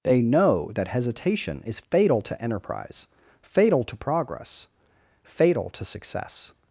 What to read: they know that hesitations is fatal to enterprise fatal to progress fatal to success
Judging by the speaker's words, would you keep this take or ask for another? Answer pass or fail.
fail